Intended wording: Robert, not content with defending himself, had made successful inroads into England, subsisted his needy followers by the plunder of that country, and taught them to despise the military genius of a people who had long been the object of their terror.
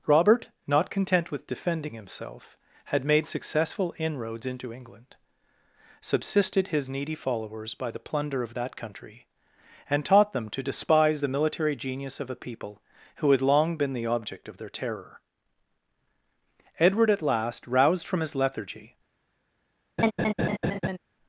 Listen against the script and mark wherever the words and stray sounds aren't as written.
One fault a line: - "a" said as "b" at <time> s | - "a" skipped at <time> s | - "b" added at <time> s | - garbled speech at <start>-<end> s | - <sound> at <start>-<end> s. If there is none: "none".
- "Edward at last roused from his lethargy" added at 16.8 s
- laugh at 20.0-21.0 s